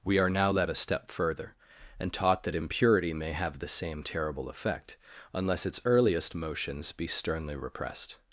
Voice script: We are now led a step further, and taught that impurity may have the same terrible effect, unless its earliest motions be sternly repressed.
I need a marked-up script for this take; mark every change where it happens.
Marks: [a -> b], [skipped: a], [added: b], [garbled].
We are now led a step further, and taught that impurity may have the same terrible effect, unless its earliest motions be sternly repressed.